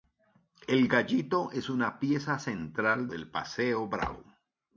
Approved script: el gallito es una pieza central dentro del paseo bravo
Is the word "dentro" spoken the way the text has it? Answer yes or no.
no